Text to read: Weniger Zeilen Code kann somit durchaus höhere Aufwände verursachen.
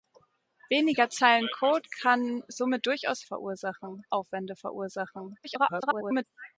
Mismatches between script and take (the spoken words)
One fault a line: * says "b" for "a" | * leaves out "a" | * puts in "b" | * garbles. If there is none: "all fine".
* says "verursachen" for "höhere"
* garbles